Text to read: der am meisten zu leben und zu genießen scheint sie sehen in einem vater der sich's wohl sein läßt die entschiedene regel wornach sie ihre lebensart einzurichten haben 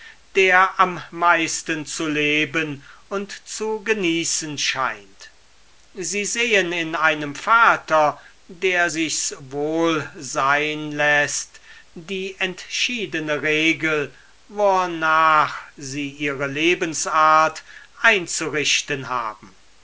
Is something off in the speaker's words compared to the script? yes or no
no